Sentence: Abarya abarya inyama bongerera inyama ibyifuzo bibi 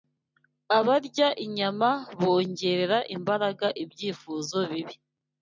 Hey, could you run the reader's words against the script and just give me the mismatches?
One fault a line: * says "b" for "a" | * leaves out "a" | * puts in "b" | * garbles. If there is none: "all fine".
* leaves out "abarya"
* says "imbaraga" for "inyama"